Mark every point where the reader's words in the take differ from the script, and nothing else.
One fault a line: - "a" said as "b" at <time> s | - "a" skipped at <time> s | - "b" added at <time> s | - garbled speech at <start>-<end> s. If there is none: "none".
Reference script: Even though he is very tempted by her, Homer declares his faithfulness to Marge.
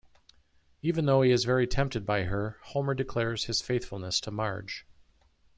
none